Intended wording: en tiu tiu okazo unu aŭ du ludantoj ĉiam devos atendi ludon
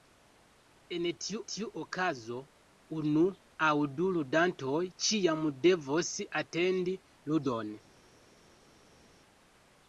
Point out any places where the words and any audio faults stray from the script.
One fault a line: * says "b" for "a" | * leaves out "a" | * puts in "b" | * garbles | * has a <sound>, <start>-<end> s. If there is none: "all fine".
all fine